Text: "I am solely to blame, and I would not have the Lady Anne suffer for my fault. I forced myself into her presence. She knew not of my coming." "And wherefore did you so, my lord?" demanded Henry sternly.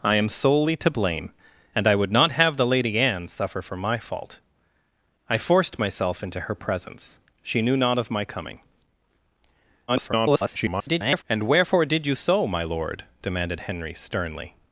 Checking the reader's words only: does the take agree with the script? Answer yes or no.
no